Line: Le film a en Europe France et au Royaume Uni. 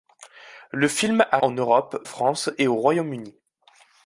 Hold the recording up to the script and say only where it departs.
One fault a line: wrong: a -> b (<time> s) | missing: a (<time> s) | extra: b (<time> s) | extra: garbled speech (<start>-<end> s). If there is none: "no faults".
no faults